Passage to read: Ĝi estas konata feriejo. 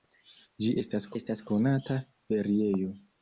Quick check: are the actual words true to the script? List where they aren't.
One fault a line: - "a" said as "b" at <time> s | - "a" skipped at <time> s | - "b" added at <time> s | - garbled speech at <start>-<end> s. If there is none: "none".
- "estas" added at 1.2 s